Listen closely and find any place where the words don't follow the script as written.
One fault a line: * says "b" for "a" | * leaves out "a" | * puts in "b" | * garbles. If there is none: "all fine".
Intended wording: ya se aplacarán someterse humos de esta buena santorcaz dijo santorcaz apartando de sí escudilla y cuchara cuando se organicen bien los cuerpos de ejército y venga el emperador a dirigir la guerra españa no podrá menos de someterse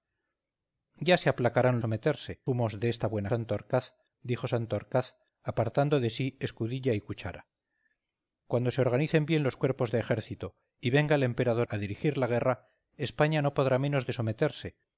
all fine